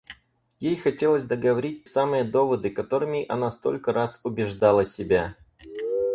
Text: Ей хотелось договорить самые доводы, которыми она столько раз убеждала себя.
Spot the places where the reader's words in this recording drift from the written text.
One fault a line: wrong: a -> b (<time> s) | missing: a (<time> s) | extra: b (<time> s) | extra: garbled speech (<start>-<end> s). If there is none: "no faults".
no faults